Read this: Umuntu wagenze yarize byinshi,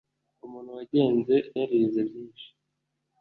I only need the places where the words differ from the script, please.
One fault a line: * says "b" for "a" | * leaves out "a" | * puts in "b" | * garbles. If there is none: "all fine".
all fine